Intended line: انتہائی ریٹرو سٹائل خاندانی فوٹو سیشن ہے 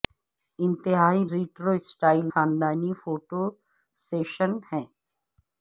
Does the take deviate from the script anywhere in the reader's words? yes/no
no